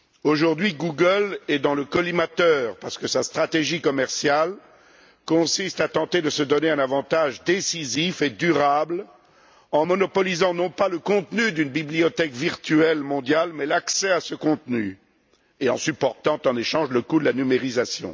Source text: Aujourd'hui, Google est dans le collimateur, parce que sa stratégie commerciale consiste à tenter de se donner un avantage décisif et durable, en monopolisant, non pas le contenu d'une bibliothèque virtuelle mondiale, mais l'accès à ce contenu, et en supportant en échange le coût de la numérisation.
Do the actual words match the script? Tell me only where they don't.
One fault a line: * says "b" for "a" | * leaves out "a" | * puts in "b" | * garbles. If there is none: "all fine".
all fine